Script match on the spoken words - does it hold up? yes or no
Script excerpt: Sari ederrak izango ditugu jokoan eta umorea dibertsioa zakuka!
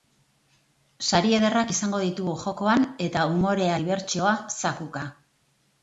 yes